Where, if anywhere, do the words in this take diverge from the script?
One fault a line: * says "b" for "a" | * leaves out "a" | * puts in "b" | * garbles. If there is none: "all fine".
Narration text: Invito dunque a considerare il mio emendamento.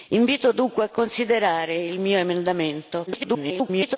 * garbles